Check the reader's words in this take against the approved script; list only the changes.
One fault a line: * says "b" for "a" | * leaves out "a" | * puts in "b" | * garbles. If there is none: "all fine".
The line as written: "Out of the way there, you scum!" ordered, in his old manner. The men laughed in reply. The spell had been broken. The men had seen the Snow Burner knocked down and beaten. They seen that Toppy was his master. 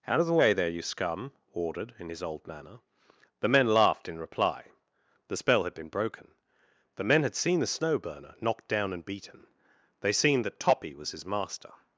all fine